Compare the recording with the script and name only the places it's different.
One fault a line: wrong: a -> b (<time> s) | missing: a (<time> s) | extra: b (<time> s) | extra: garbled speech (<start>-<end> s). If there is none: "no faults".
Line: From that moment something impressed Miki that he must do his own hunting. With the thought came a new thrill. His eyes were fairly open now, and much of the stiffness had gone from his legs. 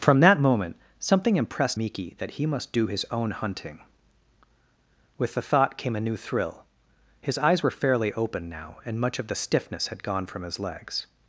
no faults